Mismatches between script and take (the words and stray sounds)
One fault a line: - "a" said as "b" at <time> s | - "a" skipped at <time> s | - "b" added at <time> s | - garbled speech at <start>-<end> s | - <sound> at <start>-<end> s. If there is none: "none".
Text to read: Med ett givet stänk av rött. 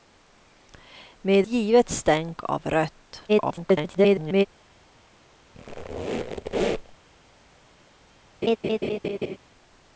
- "ett" skipped at 1.5 s
- garbled speech at 3.3-4.5 s
- squeak at 5.5-7.0 s
- laugh at 8.4-9.4 s